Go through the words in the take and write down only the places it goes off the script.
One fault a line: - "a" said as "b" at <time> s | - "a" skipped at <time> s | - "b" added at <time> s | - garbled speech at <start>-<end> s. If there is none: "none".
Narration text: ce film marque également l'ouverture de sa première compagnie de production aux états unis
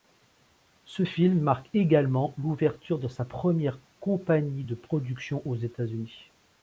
none